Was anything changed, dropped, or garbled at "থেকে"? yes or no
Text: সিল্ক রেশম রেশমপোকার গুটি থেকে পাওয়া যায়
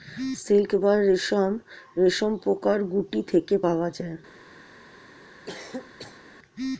no